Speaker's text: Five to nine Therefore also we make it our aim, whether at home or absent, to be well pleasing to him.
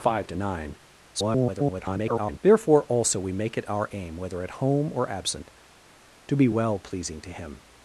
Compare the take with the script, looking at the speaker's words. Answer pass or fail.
fail